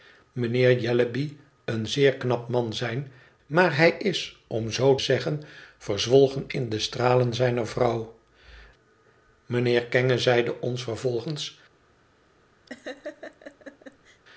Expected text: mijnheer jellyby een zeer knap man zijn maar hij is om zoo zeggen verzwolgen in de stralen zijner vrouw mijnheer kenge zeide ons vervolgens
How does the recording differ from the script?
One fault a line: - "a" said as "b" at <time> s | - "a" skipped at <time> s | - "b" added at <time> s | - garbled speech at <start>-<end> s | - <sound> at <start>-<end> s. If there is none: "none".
- laugh at 12.7-14.2 s